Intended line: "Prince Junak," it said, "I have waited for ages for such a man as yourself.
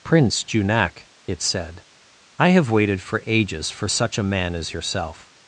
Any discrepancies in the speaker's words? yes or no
no